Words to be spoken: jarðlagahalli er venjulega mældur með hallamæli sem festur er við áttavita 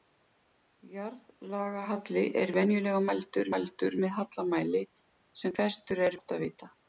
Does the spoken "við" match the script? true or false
false